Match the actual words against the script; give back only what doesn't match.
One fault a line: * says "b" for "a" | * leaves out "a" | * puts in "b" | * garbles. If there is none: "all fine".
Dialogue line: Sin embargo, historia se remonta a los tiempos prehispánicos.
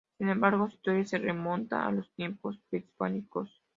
all fine